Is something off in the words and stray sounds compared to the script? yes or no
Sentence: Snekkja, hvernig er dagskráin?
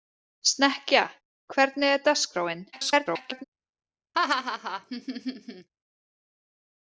yes